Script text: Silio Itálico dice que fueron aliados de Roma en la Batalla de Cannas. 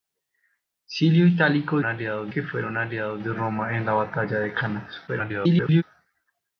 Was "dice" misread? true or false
true